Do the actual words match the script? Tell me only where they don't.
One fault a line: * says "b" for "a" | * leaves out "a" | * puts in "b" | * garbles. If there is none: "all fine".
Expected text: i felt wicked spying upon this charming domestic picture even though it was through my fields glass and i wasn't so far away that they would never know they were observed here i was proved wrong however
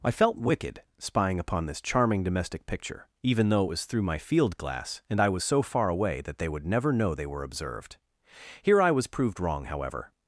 * says "field" for "fields"
* says "was" for "wasn't"